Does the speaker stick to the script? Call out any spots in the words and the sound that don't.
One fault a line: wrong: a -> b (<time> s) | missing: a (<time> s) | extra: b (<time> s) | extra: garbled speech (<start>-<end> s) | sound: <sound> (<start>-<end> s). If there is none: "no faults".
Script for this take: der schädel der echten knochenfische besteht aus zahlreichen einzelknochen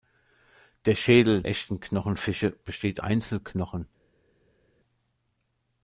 missing: der (1.4 s)
missing: aus zahlreichen (3.0 s)